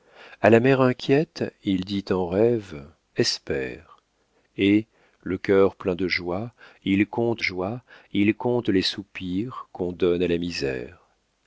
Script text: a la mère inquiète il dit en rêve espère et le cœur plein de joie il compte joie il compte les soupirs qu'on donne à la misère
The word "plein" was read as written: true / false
true